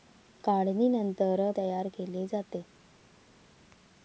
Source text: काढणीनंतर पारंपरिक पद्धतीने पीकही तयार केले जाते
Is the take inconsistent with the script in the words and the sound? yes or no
yes